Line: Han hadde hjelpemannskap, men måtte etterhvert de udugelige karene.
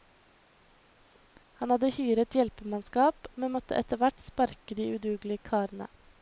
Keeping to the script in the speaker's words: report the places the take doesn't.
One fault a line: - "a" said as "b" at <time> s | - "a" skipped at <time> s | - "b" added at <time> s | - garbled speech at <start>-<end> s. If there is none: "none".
- "hyret" added at 2.0 s
- "sparke" added at 4.3 s